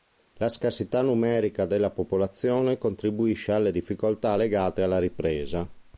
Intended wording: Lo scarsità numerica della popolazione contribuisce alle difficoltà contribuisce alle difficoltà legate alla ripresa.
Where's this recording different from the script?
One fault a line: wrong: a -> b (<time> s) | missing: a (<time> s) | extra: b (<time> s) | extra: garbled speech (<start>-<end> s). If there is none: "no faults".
wrong: Lo -> La (0.4 s)
missing: contribuisce alle difficoltà (4.3 s)